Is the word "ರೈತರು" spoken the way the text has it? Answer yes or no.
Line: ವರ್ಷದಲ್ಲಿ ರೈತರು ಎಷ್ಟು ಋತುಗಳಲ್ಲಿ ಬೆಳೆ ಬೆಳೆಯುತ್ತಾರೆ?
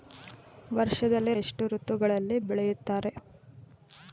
no